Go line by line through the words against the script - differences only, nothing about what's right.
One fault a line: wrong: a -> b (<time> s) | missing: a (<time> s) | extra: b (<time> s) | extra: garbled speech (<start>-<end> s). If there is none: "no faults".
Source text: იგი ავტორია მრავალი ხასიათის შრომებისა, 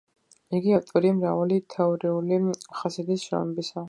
extra: თეორიული (1.8 s)